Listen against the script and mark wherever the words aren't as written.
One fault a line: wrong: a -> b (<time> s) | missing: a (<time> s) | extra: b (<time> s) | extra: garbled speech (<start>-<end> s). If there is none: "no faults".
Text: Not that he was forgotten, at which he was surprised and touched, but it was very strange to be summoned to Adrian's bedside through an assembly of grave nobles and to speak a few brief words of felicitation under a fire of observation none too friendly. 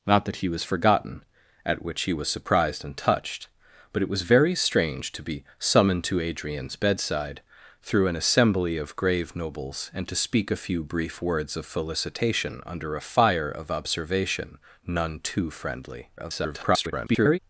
extra: garbled speech (16.2-17.4 s)